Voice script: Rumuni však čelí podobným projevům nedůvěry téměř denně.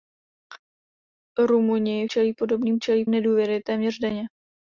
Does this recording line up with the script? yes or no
no